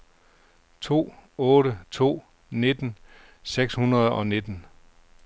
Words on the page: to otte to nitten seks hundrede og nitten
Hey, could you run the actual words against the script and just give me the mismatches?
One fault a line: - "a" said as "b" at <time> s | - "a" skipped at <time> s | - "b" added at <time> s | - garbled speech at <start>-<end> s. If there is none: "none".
none